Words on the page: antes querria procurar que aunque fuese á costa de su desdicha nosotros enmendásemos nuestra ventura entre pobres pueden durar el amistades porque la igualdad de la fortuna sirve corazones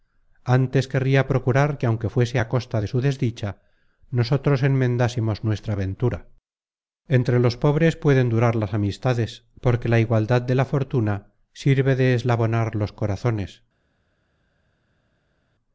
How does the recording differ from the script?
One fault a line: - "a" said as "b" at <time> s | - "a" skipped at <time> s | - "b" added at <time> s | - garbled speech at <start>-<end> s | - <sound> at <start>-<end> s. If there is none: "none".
- "los" added at 7.4 s
- "el" said as "las" at 8.6 s
- "de eslabonar los" added at 12.0 s